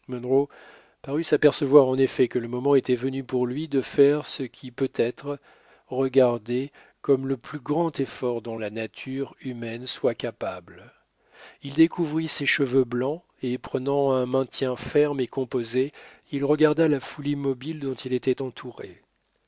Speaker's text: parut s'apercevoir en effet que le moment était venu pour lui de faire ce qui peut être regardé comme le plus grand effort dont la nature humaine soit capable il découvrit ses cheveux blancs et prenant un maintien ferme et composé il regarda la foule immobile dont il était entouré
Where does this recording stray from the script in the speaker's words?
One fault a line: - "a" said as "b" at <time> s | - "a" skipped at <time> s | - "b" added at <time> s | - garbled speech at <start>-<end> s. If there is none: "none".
none